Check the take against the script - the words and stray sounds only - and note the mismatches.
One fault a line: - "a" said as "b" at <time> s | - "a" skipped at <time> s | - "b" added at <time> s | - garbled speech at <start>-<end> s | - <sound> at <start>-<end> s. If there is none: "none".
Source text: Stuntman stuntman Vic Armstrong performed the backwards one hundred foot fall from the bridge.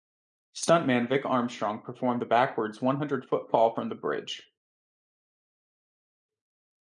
- "stuntman" skipped at 1.1 s